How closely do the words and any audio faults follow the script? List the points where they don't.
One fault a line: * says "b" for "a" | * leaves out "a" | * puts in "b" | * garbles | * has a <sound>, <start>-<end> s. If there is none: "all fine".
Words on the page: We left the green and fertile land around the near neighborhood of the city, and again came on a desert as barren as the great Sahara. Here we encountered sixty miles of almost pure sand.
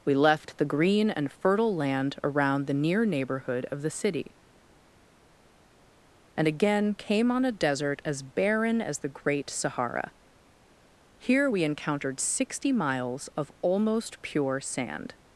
all fine